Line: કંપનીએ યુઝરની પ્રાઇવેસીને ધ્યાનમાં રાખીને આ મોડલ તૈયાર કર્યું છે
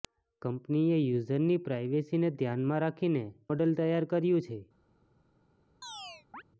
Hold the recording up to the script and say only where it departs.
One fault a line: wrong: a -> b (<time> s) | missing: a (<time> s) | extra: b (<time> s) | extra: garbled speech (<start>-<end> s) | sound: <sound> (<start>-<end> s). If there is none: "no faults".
missing: આ (3.2 s)
sound: chirp (5.8-6.4 s)